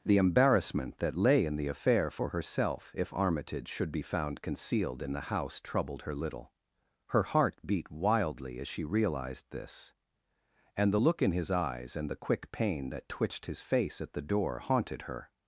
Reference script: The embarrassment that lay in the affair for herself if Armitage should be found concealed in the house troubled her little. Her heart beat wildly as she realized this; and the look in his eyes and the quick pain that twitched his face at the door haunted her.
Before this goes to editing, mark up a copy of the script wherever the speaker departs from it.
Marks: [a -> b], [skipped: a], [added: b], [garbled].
The embarrassment that lay in the affair for herself if Armitage should be found concealed in the house troubled her little. Her heart beat wildly as she realized this; and the look in his eyes and the quick pain that twitched his face at the door haunted her.